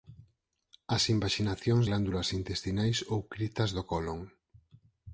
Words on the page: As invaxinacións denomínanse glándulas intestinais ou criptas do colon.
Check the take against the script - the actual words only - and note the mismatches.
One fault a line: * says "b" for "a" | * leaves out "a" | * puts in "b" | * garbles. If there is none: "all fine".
* leaves out "denomínanse"